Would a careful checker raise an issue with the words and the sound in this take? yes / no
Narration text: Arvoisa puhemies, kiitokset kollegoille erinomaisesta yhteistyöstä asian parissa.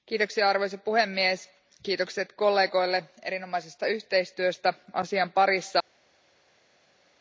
no